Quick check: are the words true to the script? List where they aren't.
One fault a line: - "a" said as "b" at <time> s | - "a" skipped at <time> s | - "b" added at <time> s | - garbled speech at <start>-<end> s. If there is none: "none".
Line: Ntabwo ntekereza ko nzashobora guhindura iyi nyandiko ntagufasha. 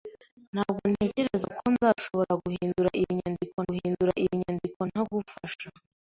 - "guhindura iyi nyandiko" added at 3.7 s